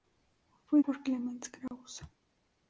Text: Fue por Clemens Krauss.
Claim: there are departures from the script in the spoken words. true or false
false